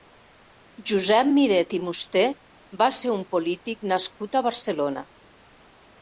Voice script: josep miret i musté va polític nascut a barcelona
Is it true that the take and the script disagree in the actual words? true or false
true